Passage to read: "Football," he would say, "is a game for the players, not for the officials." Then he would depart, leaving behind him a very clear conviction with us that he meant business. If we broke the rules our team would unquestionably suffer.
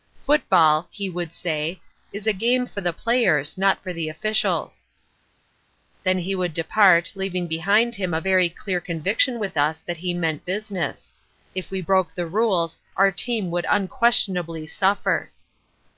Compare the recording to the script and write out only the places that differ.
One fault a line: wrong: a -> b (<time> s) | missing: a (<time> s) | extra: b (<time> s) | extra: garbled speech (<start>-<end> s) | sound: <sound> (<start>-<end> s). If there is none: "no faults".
no faults